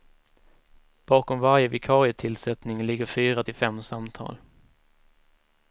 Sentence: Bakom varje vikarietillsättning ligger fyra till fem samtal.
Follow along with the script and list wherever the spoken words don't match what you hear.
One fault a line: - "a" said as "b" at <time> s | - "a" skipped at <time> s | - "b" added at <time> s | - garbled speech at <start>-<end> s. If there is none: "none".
none